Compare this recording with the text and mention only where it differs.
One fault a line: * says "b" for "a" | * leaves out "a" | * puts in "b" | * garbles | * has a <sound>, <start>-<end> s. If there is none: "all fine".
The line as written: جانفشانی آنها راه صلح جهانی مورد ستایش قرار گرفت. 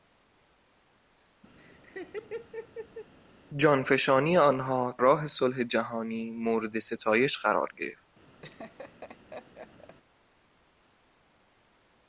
* has a laugh, 1.6-3.1 s
* has a laugh, 8.4-10.0 s